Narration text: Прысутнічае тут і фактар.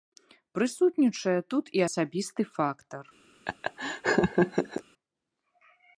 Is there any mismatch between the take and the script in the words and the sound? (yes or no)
yes